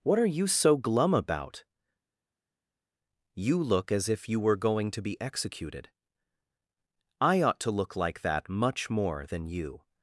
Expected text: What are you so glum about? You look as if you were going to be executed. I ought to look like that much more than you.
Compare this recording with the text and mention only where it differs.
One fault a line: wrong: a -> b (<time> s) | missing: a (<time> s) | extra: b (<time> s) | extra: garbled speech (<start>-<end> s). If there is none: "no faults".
no faults